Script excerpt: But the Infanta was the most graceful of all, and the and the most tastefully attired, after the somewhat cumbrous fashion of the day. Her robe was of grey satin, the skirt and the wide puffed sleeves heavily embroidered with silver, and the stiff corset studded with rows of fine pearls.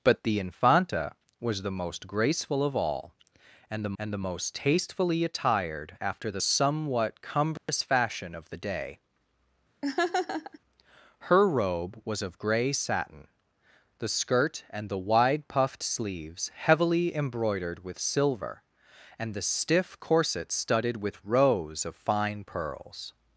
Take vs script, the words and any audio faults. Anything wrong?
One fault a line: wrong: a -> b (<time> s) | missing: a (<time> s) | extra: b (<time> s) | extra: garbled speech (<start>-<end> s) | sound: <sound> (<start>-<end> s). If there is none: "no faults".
sound: dropout (7.6-7.7 s)
sound: laugh (9.8-10.6 s)